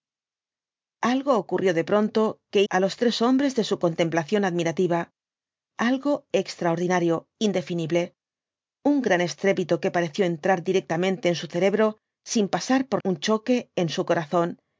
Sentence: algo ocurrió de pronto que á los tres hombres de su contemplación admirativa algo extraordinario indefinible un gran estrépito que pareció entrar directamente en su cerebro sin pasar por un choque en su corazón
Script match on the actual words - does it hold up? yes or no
yes